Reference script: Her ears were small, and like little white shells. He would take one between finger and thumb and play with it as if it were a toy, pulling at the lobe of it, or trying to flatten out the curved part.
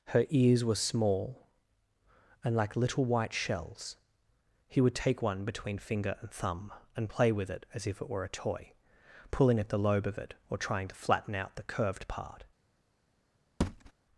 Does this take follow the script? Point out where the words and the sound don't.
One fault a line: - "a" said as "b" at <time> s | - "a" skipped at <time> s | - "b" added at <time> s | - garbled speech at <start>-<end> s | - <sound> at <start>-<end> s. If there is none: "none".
- thud at 13.6-13.9 s